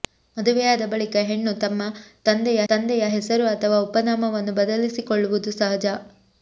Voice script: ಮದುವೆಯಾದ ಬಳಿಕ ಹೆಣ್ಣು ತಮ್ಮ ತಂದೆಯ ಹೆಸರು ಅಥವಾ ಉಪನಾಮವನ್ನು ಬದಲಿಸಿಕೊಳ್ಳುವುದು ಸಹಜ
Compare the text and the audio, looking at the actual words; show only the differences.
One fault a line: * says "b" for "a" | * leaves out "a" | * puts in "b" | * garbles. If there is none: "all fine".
* puts in "ತಂದೆಯ"